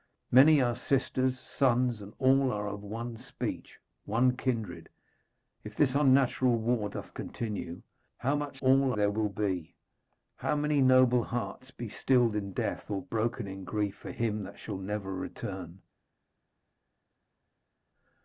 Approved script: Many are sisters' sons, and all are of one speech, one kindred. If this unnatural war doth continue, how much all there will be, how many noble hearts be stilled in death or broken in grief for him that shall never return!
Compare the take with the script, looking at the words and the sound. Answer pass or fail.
pass